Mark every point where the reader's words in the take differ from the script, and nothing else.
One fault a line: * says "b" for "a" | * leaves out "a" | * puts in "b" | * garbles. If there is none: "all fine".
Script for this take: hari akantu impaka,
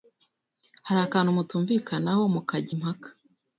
* puts in "mutumvikanaho mukajya"